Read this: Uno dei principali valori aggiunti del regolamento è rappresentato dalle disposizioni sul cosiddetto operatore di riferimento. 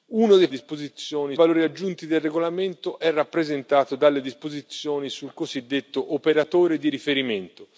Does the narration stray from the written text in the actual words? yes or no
yes